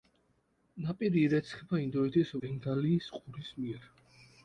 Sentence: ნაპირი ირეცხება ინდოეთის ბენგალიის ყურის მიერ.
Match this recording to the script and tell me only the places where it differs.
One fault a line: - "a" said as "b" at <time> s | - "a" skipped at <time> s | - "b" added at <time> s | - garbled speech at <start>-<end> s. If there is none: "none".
none